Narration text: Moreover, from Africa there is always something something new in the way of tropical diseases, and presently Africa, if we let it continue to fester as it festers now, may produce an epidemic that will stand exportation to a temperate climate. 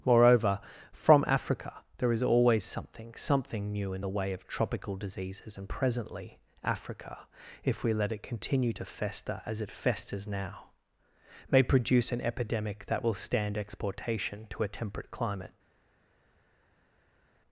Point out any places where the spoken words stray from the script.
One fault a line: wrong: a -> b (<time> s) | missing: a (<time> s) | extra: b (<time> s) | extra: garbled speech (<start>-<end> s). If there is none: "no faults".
no faults